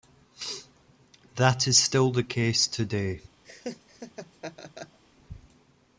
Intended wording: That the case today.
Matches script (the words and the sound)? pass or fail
fail